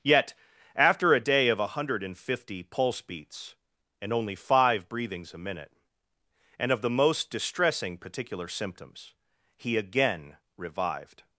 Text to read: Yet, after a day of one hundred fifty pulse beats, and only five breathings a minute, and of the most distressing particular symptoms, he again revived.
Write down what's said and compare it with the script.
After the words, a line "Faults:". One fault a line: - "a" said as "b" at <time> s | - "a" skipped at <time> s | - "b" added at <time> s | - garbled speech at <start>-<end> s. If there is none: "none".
Yet, after a day of one hundred fifty pulse beats, and only five breathings a minute, and of the most distressing particular symptoms, he again revived.
Faults:
none